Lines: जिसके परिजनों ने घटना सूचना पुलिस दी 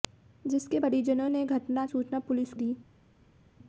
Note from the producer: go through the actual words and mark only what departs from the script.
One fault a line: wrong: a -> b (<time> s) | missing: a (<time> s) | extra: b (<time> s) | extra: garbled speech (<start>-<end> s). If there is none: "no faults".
no faults